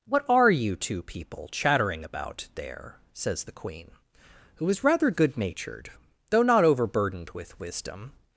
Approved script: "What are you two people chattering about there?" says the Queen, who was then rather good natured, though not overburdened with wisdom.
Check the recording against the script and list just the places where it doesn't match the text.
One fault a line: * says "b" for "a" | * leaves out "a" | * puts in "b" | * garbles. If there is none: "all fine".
* leaves out "then"